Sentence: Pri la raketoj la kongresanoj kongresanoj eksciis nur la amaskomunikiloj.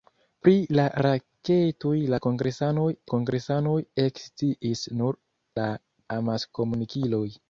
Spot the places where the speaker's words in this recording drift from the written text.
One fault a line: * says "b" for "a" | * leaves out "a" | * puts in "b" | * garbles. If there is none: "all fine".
all fine